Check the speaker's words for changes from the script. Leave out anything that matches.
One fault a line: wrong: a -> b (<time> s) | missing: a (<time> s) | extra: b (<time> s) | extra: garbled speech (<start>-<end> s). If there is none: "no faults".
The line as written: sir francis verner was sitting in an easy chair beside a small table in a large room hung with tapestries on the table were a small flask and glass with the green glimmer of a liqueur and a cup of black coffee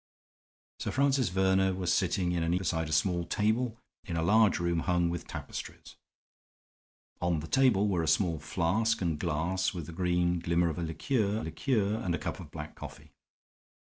missing: easy chair (2.5 s)
extra: liqueur (11.4 s)